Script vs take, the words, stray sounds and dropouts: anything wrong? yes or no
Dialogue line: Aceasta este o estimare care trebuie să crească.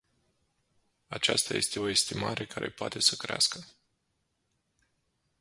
yes